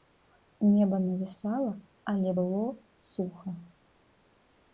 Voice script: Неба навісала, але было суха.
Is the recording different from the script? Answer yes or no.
no